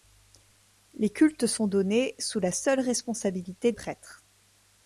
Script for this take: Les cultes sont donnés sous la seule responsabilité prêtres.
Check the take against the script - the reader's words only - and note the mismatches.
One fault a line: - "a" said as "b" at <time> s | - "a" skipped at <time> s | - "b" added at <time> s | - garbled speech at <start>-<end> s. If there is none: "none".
none